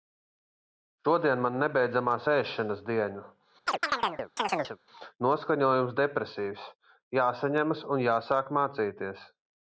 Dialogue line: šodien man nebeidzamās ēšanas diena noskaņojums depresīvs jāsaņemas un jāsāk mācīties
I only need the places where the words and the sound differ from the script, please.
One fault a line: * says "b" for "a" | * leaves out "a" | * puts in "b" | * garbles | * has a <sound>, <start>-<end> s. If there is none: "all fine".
* has a chirp, 3.7-4.8 s